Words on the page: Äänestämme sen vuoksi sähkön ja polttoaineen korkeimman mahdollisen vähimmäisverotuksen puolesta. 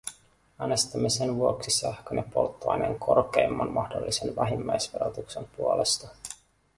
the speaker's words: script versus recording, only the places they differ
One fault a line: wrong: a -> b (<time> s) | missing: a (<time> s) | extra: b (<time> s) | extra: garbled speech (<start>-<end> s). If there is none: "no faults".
no faults